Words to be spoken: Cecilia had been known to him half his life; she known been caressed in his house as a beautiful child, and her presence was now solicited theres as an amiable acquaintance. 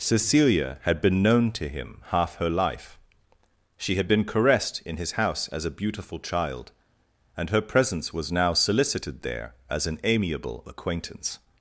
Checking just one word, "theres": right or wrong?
wrong